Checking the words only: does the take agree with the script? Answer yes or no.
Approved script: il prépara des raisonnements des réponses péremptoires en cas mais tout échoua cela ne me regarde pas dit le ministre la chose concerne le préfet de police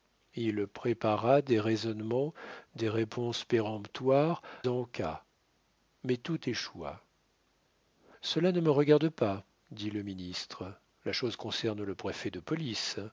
yes